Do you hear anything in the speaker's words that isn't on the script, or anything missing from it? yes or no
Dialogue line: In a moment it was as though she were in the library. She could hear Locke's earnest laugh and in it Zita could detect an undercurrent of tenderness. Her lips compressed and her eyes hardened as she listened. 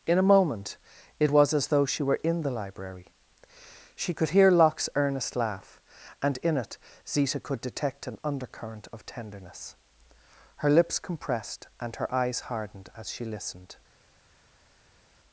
no